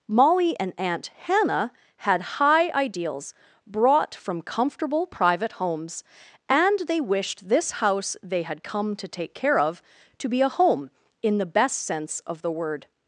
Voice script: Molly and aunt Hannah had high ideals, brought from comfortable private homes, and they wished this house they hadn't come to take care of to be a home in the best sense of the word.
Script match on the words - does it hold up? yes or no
no